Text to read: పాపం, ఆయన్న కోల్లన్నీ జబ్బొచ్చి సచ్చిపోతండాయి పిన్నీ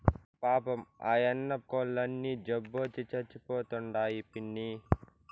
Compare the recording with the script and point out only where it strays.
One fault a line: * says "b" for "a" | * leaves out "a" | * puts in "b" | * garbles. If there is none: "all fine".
all fine